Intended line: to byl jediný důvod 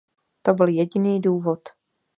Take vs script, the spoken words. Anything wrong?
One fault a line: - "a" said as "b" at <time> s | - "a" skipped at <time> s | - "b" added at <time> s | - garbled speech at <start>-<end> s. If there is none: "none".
none